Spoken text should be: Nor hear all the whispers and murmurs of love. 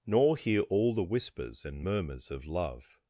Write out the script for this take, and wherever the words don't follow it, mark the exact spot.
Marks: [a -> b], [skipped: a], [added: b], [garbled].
Nor hear all the whispers and murmurs of love.